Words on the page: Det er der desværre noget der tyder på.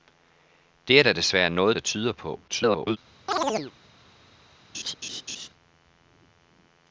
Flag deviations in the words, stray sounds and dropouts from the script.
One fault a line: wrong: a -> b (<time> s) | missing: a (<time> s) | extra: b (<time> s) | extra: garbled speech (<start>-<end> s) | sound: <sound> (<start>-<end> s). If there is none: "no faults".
extra: garbled speech (2.5-3.0 s)
sound: chirp (3.3-3.7 s)
sound: laugh (4.7-5.5 s)